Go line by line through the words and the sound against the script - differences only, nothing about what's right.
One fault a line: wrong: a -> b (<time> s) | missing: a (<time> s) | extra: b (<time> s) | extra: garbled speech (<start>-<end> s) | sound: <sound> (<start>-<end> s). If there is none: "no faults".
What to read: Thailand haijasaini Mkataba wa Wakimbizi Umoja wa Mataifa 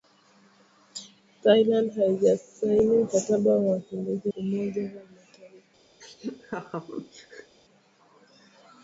sound: laugh (6.0-7.6 s)